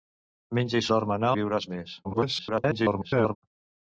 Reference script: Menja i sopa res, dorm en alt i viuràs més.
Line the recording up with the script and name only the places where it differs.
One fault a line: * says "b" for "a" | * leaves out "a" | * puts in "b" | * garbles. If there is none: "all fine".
* leaves out "sopa res"
* leaves out "alt"
* garbles